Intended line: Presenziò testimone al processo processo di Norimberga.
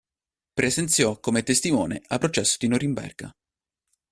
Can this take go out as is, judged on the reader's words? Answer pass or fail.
fail